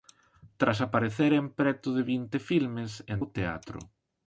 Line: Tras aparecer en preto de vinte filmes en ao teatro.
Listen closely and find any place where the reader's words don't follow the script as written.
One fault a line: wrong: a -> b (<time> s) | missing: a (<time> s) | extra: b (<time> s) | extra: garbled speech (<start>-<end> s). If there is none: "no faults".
no faults